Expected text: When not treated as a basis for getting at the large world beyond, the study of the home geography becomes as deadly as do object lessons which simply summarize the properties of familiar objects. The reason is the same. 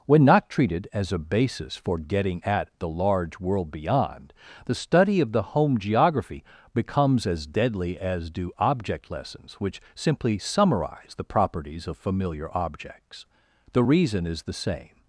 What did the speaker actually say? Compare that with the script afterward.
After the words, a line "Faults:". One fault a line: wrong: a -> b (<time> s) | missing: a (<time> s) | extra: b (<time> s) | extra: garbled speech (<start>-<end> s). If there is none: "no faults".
When not treated as a basis for getting at the large world beyond, the study of the home geography becomes as deadly as do object lessons which simply summarize the properties of familiar objects. The reason is the same.
Faults:
no faults